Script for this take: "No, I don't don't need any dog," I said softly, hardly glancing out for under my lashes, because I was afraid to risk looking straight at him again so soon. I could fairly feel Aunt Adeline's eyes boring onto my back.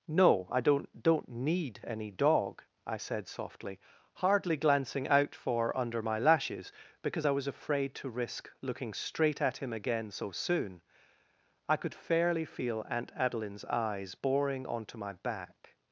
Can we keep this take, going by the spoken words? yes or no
yes